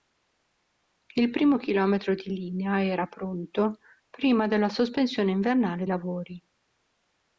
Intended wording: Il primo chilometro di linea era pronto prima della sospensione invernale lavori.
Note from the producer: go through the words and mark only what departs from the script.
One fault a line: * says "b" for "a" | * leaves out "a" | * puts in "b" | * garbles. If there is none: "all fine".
all fine